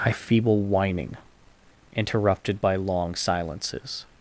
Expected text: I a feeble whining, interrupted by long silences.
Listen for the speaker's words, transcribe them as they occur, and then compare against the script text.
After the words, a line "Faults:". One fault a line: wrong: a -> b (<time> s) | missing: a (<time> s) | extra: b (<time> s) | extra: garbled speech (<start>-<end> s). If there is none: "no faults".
I a feeble whining, interrupted by long silences.
Faults:
no faults